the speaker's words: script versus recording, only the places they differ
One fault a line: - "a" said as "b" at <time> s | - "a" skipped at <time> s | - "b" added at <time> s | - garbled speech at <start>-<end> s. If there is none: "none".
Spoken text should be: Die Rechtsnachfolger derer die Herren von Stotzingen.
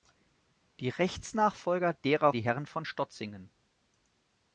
none